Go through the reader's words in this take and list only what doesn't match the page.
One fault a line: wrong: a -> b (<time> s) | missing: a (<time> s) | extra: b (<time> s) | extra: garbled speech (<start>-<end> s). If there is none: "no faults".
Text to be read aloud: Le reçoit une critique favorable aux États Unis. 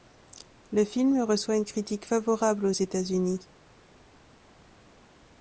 extra: film (0.8 s)